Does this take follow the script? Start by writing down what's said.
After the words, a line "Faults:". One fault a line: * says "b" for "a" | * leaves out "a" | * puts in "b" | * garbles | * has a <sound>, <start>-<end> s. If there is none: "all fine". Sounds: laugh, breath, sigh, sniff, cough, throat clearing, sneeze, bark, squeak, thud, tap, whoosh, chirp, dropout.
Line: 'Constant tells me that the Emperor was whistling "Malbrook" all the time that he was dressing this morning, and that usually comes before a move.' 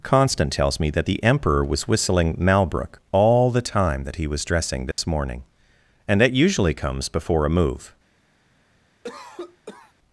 'Constant tells me that the Emperor was whistling "Malbrook" all the time that he was dressing this morning, and that usually comes before a move.'
Faults:
* has a dropout, 4.9-5.0 s
* has a cough, 9.0-9.9 s